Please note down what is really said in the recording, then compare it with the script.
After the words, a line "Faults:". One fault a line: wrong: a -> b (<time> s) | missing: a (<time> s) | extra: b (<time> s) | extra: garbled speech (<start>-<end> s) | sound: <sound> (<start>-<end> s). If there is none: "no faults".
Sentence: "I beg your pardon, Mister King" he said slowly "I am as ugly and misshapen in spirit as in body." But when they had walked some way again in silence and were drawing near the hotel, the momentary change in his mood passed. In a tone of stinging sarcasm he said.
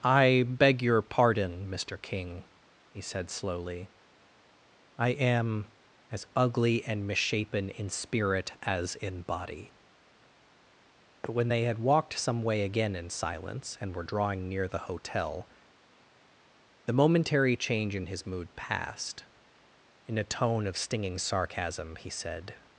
"I beg your pardon, Mister King" he said slowly "I am as ugly and misshapen in spirit as in body." But when they had walked some way again in silence and were drawing near the hotel, the momentary change in his mood passed. In a tone of stinging sarcasm he said.
Faults:
no faults